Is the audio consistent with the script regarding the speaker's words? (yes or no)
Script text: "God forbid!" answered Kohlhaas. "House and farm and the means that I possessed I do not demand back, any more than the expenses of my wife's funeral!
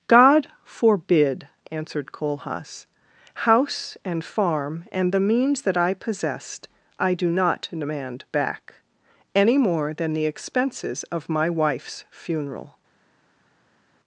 yes